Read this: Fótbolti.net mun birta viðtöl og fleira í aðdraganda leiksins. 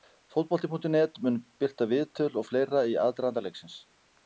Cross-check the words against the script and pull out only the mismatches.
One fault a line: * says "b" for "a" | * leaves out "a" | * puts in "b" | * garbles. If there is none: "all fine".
all fine